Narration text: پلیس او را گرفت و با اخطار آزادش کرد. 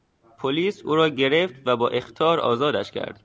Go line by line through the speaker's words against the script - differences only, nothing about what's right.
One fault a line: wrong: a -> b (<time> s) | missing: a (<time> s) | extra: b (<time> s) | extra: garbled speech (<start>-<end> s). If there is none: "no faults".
no faults